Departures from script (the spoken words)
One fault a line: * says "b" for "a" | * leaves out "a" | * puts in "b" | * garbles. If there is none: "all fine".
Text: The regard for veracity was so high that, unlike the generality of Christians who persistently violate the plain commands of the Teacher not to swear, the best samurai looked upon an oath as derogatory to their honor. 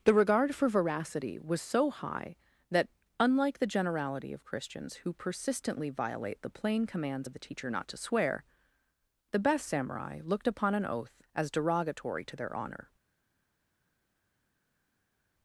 all fine